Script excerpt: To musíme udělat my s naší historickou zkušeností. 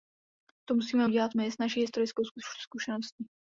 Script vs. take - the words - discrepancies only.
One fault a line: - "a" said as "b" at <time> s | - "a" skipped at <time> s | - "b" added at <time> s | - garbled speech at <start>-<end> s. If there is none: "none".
none